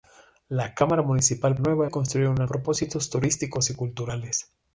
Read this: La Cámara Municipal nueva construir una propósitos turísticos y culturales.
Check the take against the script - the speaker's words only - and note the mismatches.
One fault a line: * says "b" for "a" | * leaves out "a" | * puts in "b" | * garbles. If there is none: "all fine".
all fine